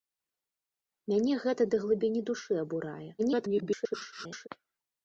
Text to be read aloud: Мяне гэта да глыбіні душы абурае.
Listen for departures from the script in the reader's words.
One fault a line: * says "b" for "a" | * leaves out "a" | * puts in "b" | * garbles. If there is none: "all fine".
* garbles